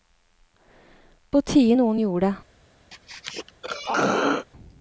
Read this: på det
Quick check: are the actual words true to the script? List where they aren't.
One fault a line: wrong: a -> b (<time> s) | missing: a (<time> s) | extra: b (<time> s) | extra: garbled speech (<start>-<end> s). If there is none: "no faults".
extra: tide noen gjorde (1.4 s)